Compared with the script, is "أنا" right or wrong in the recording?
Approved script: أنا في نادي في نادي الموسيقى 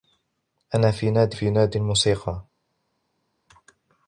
right